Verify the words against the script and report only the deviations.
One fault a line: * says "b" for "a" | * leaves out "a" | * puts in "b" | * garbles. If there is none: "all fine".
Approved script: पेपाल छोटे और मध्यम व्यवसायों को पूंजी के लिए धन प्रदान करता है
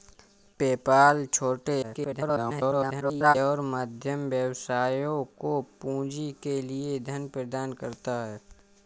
* garbles